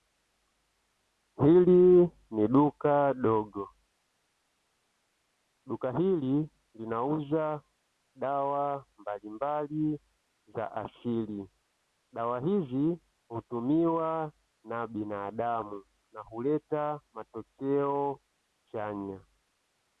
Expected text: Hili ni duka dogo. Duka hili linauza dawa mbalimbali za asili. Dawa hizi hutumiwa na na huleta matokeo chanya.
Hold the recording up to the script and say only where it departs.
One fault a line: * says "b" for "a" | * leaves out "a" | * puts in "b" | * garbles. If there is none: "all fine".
* puts in "binadamu"